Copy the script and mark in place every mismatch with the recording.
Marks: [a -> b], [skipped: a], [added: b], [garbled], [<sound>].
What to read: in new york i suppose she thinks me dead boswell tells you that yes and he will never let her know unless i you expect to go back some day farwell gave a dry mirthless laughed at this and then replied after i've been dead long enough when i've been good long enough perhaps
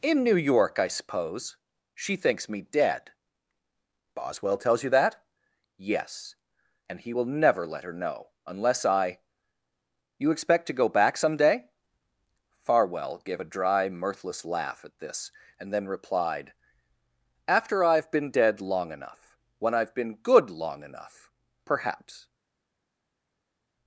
in new york i suppose she thinks me dead boswell tells you that yes and he will never let her know unless i you expect to go back some day farwell gave a dry mirthless [laughed -> laugh] at this and then replied after i've been dead long enough when i've been good long enough perhaps